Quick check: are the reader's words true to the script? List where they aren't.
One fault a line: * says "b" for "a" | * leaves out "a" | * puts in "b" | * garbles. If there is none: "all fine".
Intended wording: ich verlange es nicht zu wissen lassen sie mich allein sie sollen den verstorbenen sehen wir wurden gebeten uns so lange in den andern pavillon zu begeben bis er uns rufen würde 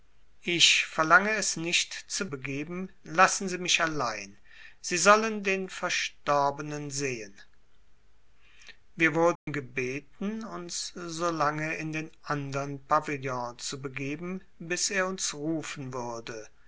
* says "begeben" for "wissen"